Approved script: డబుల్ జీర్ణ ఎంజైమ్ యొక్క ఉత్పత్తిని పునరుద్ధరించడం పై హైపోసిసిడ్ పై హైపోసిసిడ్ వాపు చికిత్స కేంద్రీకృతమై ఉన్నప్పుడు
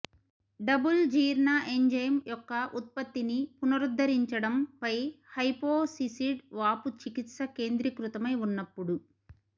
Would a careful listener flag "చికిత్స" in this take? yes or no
no